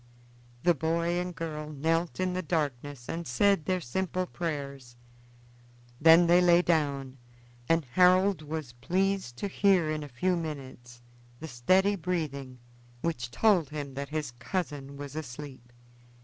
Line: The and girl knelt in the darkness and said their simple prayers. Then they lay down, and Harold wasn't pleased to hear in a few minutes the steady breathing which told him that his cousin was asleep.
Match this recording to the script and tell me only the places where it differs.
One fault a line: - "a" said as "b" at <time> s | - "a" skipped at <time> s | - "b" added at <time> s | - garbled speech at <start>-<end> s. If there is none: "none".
- "boy" added at 0.7 s
- "wasn't" said as "was" at 8.4 s